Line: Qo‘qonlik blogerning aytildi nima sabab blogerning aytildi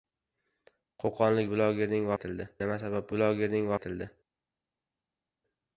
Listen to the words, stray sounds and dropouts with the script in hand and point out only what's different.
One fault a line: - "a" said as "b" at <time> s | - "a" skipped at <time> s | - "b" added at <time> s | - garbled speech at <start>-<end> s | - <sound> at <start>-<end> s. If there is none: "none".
none